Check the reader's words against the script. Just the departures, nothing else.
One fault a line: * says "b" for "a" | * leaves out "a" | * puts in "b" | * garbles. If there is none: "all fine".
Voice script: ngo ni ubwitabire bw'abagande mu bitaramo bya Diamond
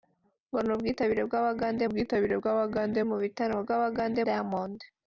* puts in "ubwitabire bw'abagande"
* says "bw'abagande" for "bya"